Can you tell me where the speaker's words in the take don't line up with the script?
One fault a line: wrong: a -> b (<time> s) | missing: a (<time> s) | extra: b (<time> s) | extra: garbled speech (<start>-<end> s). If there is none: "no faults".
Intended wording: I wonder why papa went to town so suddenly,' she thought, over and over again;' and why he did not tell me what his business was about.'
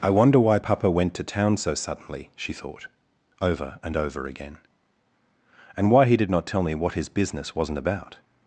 wrong: was -> wasn't (7.6 s)